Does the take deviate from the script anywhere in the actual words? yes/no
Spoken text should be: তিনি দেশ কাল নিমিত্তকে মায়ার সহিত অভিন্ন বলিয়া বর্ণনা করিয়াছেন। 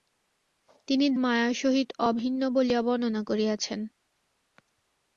yes